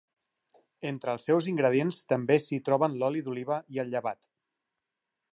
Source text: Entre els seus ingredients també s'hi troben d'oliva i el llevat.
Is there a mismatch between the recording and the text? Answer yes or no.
yes